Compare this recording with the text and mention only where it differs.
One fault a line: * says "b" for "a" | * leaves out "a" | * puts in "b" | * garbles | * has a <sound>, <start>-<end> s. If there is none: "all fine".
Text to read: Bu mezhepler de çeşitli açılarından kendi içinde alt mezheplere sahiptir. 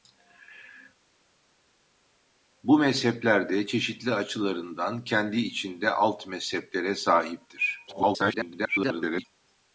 * garbles